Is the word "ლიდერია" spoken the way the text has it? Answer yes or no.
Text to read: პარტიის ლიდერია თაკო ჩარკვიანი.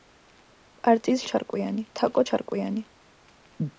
no